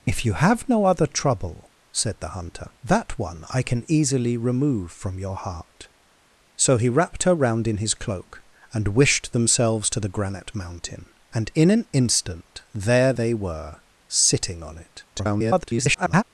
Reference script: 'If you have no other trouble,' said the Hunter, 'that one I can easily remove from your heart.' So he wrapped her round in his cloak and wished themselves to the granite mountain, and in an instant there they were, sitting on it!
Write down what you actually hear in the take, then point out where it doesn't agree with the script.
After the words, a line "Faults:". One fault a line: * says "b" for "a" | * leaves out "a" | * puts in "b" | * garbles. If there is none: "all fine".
'If you have no other trouble,' said the Hunter, 'that one I can easily remove from your heart.' So he wrapped her round in his cloak and wished themselves to the granite mountain, and in an instant there they were, sitting on it! [garbled]
Faults:
* garbles